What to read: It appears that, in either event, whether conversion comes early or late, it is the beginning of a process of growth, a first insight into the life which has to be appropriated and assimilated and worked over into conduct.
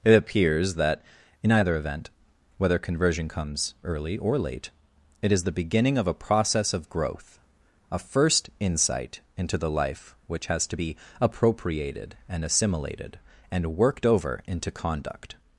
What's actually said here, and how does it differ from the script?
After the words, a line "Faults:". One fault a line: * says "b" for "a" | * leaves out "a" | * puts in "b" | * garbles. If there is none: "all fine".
It appears that, in either event, whether conversion comes early or late, it is the beginning of a process of growth, a first insight into the life which has to be appropriated and assimilated and worked over into conduct.
Faults:
all fine